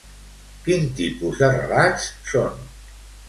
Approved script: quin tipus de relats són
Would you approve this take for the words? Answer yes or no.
yes